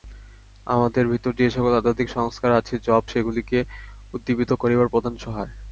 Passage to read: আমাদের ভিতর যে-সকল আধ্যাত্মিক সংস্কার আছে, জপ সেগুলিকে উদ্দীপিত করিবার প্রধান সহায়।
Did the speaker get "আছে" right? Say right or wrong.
right